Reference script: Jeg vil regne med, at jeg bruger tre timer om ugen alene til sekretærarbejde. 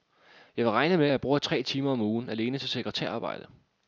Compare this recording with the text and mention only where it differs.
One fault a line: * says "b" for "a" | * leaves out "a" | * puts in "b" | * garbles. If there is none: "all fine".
* leaves out "at"